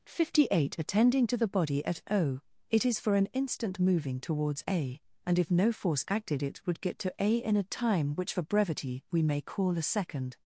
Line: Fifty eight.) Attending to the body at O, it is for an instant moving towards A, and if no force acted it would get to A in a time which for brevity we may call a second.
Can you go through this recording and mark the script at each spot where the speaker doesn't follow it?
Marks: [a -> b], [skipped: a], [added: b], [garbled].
Fifty eight.) Attending to the body at O, it is for an instant moving towards A, and if no force acted it would get to A in a time which for brevity we may call a second.